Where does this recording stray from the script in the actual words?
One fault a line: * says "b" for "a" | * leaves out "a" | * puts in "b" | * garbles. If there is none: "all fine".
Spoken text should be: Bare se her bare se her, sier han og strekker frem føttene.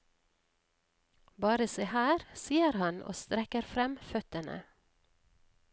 * leaves out "bare se her"